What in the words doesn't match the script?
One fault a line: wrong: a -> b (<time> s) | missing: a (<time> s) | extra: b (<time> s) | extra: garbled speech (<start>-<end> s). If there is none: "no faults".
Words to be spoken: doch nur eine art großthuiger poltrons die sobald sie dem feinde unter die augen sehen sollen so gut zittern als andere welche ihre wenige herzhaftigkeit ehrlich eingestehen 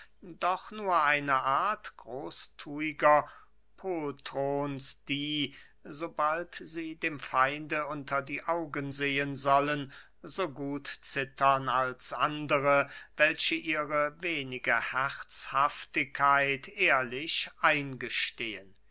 no faults